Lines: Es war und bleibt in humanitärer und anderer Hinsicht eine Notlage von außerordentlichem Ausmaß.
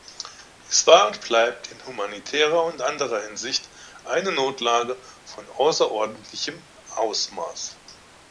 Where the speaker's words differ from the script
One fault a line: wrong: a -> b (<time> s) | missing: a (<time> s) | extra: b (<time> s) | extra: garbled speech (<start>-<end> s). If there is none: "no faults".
no faults